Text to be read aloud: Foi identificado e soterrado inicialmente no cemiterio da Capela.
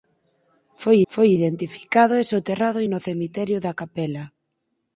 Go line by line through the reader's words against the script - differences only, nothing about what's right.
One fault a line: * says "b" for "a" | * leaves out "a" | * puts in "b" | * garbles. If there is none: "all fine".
* puts in "foi"
* leaves out "inicialmente"